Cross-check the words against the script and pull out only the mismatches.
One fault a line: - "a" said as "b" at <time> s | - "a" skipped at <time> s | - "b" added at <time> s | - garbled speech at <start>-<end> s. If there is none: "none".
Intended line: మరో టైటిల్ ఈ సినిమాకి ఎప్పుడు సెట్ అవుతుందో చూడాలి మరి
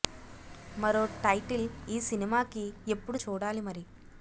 - "సెట్ అవుతుందో" skipped at 3.2 s